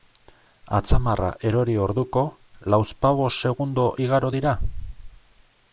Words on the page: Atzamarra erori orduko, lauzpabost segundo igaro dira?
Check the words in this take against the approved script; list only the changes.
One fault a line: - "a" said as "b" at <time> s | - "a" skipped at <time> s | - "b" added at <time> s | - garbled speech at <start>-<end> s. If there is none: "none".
none